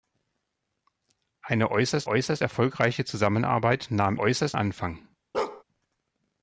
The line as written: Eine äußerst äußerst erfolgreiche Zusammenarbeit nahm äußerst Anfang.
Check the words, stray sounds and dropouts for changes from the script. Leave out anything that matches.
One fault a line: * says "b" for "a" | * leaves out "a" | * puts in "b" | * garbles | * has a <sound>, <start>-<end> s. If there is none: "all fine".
* has a bark, 5.3-5.6 s